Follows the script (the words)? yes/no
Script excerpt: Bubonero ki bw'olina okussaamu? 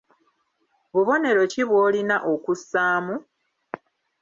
yes